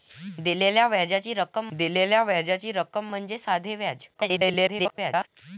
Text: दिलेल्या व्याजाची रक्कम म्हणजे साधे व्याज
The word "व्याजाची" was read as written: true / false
true